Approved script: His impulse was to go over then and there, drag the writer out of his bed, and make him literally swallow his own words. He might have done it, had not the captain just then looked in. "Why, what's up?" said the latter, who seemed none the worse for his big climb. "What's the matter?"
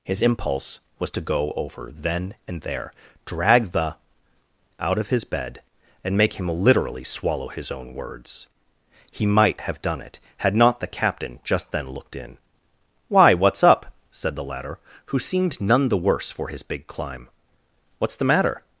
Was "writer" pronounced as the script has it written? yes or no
no